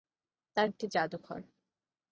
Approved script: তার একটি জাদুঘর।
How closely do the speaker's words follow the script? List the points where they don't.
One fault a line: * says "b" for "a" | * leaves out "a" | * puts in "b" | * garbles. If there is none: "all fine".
all fine